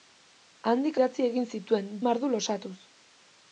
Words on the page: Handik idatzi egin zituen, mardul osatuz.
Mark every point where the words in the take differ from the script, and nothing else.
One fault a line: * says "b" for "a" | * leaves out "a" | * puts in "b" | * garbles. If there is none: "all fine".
all fine